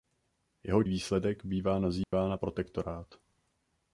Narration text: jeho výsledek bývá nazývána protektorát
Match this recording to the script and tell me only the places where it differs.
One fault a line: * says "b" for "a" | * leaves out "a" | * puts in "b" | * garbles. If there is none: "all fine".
all fine